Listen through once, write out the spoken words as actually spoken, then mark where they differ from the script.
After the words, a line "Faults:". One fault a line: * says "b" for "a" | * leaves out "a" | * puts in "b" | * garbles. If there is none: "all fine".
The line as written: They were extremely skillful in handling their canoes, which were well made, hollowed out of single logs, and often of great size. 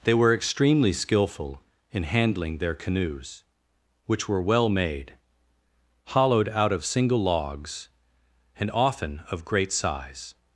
They were extremely skillful in handling their canoes, which were well made, hollowed out of single logs, and often of great size.
Faults:
all fine